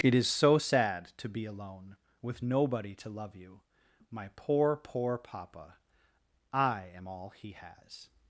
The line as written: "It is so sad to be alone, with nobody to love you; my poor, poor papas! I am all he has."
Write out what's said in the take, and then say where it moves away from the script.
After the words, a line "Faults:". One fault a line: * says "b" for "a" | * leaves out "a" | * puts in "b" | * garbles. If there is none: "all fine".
"It is so sad to be alone, with nobody to love you; my poor, poor papa! I am all he has."
Faults:
* says "papa" for "papas"